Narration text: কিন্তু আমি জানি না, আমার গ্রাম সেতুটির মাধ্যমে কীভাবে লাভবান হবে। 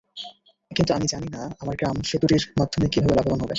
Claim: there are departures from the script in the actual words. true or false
false